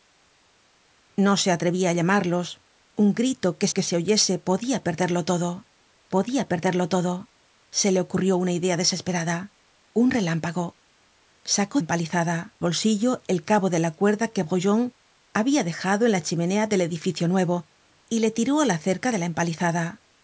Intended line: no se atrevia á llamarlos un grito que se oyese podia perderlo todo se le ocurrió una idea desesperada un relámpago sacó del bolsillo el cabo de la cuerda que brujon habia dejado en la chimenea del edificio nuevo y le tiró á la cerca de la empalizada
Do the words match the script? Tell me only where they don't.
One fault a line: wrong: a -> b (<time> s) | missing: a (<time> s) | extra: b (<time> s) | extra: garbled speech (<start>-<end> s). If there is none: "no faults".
extra: que (3.7 s)
extra: podia perderlo todo (6.2 s)
wrong: del -> empalizada (11.8 s)